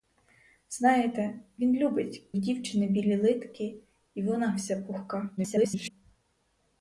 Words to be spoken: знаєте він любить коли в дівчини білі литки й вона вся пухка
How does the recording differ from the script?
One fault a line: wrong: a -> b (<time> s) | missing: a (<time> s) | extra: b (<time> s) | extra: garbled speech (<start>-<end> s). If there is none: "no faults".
missing: коли (2.3 s)
extra: garbled speech (5.4-5.9 s)